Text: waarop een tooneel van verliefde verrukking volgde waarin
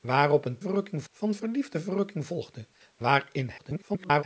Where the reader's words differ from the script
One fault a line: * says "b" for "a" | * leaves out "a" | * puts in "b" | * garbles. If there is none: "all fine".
* says "verrukking" for "tooneel"
* garbles